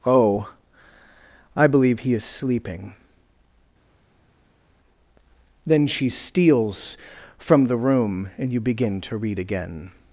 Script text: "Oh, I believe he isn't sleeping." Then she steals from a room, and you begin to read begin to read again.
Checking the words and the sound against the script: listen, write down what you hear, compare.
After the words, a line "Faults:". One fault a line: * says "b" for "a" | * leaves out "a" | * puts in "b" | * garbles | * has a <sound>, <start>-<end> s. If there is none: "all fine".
"Oh, I believe he is sleeping." Then she steals from the room, and you begin to read again.
Faults:
* says "is" for "isn't"
* says "the" for "a"
* leaves out "begin to read"